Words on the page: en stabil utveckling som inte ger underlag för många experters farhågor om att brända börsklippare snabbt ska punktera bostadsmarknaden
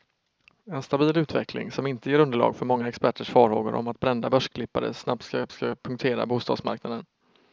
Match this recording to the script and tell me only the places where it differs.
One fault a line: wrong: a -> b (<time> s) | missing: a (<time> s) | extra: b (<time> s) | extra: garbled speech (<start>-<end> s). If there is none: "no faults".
extra: ska (5.5 s)